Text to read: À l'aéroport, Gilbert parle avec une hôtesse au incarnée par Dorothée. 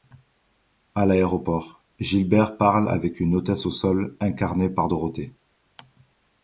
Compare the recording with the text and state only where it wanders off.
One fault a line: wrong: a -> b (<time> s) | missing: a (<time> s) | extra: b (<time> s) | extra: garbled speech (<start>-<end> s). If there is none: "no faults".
extra: sol (3.7 s)